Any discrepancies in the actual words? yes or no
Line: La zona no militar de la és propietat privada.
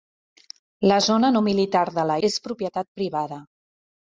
no